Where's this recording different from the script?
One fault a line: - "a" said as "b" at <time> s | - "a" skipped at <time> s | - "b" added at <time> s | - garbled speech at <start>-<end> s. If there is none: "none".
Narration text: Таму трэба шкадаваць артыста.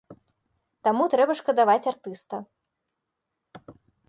none